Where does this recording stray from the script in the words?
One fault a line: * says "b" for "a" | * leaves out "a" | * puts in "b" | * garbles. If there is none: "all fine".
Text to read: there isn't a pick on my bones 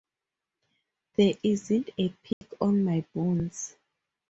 all fine